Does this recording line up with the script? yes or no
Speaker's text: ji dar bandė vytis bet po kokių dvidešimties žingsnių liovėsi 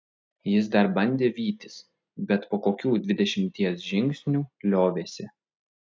no